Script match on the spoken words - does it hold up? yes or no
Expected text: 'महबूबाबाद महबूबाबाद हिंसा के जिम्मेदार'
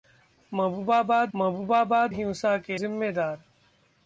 yes